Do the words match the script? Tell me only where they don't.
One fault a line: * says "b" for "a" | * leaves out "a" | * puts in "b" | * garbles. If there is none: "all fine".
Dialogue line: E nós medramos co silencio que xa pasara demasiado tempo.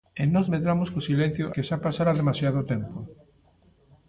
all fine